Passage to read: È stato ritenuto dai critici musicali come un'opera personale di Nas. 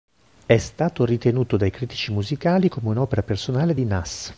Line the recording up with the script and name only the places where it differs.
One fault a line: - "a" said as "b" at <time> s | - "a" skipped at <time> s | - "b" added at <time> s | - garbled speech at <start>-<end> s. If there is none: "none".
none